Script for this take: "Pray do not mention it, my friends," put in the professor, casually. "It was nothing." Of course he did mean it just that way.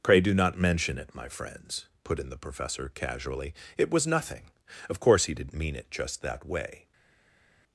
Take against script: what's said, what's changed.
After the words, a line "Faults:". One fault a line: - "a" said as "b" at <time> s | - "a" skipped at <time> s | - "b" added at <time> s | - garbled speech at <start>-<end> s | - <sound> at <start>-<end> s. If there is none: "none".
"Pray do not mention it, my friends," put in the professor, casually. "It was nothing." Of course he did mean it just that way.
Faults:
none